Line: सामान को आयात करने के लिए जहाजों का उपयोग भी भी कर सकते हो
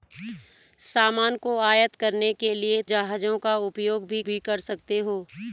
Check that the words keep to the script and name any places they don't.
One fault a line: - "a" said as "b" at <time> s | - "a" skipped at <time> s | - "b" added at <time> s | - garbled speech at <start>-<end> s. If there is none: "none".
none